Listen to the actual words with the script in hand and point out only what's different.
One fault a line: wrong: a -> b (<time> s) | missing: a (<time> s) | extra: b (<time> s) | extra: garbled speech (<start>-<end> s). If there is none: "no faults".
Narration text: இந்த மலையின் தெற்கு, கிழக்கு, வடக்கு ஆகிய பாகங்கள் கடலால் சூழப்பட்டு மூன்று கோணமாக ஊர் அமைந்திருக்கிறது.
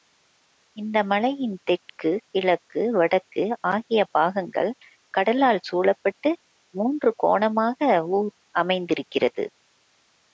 no faults